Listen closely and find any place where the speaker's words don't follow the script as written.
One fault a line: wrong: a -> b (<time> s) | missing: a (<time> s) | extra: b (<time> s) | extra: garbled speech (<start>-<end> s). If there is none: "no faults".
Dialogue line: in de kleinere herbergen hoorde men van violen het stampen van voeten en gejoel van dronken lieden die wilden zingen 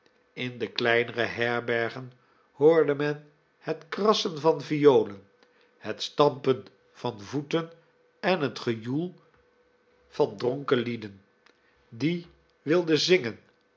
extra: het krassen (3.6 s)
extra: het (8.4 s)